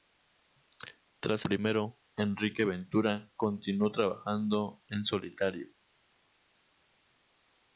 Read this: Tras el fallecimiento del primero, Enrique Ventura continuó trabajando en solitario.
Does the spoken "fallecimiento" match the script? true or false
false